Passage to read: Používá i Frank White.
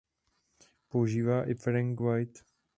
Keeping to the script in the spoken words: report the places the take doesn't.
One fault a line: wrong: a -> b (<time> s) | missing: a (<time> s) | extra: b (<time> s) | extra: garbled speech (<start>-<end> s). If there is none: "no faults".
no faults